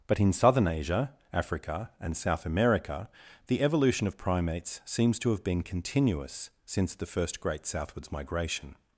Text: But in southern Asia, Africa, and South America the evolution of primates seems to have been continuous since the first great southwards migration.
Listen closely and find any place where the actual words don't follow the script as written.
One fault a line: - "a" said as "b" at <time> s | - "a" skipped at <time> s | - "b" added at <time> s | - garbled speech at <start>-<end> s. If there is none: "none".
none